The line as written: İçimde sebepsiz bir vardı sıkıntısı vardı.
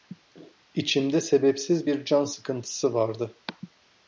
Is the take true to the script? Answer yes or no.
no